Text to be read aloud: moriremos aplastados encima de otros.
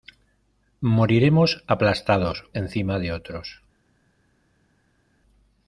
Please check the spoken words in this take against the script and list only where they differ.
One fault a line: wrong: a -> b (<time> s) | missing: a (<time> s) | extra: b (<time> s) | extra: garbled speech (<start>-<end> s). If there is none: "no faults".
no faults